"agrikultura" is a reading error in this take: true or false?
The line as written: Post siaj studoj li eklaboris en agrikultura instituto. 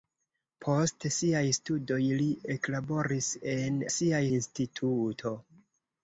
true